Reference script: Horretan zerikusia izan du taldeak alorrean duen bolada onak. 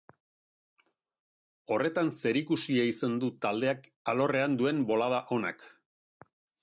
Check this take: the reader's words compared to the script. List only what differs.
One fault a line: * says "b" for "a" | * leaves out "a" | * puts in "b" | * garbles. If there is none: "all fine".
all fine